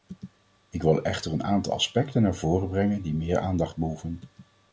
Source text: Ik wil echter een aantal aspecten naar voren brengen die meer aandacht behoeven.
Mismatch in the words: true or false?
false